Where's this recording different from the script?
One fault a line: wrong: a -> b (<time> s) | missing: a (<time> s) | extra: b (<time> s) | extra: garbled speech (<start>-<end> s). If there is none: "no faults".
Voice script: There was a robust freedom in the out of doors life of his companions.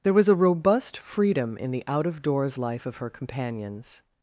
wrong: his -> her (3.0 s)